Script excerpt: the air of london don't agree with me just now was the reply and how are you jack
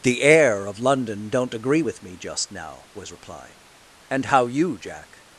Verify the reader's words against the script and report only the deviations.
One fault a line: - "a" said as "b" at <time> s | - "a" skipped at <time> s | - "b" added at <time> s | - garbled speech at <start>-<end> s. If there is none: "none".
- "the" skipped at 3.1 s
- "are" skipped at 4.5 s